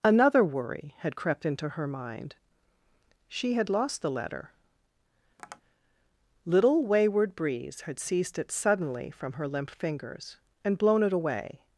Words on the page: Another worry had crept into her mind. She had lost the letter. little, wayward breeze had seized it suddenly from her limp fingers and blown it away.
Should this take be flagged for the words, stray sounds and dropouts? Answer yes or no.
yes